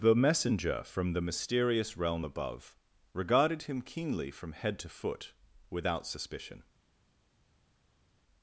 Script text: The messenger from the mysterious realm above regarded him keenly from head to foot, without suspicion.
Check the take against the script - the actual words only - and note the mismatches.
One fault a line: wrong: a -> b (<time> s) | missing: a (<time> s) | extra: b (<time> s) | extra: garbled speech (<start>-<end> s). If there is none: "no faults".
no faults